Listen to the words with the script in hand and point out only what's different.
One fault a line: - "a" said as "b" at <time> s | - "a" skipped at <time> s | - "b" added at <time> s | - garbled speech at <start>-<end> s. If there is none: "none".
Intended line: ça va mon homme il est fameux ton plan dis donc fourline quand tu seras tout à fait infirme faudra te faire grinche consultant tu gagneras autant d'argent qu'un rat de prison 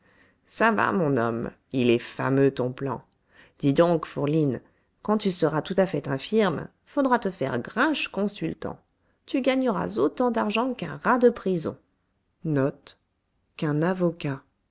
none